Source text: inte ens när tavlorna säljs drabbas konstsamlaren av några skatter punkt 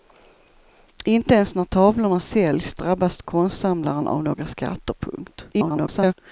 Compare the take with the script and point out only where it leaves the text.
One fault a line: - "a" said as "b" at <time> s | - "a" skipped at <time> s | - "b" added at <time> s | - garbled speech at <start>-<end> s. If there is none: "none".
- garbled speech at 5.5-6.1 s